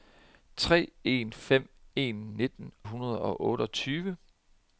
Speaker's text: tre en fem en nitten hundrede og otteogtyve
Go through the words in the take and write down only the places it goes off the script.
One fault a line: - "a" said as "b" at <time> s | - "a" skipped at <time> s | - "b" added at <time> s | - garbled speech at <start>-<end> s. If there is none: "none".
none